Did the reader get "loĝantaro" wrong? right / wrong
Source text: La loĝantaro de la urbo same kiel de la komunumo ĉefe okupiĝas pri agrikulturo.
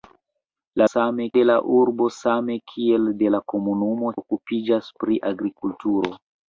wrong